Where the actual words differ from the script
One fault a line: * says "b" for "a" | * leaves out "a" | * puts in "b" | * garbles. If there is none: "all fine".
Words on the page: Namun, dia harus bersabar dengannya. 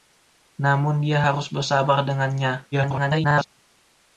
* garbles